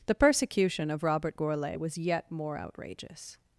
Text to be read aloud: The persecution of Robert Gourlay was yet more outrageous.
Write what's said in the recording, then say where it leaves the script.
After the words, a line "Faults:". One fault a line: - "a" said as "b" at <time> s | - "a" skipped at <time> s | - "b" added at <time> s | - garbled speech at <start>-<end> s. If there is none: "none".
The persecution of Robert Gourlay was yet more outrageous.
Faults:
none